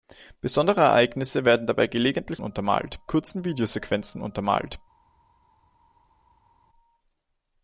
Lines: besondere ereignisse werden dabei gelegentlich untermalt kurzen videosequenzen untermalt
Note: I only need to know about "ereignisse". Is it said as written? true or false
true